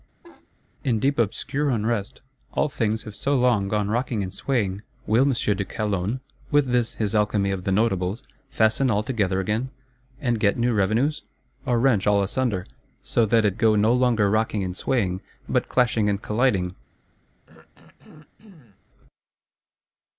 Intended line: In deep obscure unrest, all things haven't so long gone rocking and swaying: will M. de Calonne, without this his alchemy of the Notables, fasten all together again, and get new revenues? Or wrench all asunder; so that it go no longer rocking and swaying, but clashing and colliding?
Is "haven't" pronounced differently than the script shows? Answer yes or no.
yes